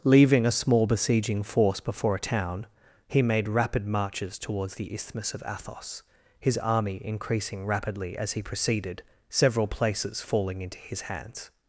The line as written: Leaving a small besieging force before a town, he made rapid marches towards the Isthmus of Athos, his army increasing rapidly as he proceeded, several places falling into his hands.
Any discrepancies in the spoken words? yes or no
no